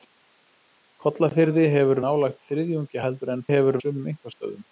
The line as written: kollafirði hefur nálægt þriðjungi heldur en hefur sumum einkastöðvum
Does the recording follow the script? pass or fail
pass